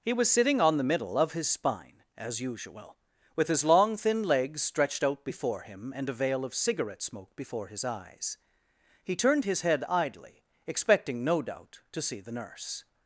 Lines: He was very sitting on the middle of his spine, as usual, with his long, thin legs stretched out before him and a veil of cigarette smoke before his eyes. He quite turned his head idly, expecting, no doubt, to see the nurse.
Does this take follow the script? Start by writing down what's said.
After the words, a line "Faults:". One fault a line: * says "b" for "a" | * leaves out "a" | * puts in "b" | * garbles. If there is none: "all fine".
He was sitting on the middle of his spine, as usual, with his long, thin legs stretched out before him and a veil of cigarette smoke before his eyes. He turned his head idly, expecting, no doubt, to see the nurse.
Faults:
* leaves out "very"
* leaves out "quite"